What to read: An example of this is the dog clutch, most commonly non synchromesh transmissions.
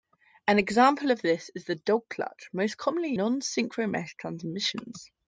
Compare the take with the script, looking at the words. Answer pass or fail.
pass